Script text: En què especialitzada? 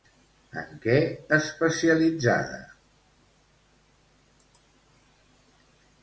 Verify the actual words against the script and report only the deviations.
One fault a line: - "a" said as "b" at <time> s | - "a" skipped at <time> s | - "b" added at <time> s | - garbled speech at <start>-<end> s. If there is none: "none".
none